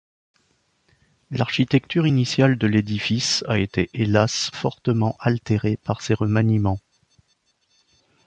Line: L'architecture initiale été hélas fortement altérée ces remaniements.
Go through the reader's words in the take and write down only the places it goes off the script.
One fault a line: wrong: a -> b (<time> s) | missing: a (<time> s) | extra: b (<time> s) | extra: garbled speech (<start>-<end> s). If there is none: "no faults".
extra: de l'édifice a (2.6 s)
extra: par (5.9 s)